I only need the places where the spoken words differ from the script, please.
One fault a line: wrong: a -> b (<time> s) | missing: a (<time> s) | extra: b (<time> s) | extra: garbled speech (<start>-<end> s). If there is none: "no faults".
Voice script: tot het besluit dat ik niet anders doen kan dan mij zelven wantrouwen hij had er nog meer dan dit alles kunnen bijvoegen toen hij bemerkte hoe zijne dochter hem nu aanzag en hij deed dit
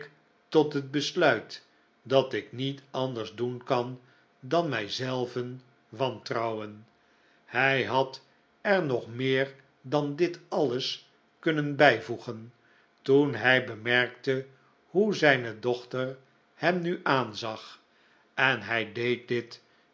no faults